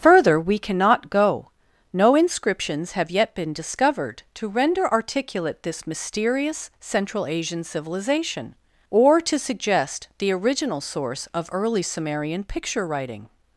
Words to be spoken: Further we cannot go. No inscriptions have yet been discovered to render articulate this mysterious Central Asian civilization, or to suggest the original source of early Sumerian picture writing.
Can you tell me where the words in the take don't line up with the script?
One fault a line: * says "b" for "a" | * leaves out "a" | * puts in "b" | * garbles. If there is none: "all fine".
all fine